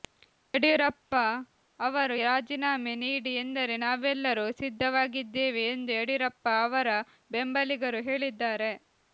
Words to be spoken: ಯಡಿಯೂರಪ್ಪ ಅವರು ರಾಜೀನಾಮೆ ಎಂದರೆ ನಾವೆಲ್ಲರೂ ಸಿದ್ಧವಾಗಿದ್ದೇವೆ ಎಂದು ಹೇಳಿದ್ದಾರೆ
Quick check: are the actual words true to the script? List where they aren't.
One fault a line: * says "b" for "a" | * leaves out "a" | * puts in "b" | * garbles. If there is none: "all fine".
* puts in "ನೀಡಿ"
* puts in "ಯಡಿಯೂರಪ್ಪ ಅವರ ಬೆಂಬಲಿಗರು"